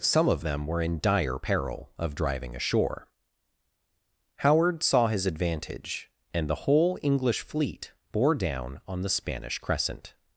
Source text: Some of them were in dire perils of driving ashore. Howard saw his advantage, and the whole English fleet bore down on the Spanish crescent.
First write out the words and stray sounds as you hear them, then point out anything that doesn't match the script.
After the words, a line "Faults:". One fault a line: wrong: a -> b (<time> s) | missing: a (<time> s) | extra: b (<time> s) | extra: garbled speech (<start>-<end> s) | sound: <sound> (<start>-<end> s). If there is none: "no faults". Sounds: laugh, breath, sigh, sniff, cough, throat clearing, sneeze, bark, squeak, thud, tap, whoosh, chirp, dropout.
Some of them were in dire peril of driving ashore. Howard saw his advantage, and the whole English fleet bore down on the Spanish crescent.
Faults:
wrong: perils -> peril (1.4 s)